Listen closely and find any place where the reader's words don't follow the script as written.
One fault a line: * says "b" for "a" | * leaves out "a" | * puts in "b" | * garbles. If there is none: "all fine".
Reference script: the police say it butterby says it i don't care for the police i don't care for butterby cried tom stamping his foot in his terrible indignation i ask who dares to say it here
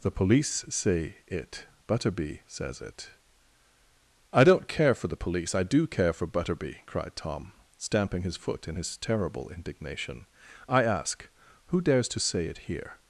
* says "do" for "don't"